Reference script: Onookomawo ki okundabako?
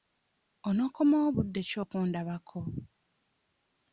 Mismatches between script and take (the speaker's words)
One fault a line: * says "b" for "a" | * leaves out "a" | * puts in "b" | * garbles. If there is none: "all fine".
* puts in "budde"